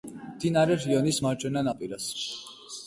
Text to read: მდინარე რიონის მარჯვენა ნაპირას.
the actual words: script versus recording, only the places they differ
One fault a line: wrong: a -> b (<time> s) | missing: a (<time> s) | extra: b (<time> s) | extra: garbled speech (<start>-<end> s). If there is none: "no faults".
no faults